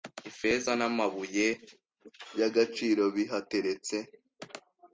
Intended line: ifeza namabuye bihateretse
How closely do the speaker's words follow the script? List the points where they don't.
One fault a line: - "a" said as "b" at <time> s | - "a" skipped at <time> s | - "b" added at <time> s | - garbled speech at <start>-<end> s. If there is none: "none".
- "yagaciro" added at 2.4 s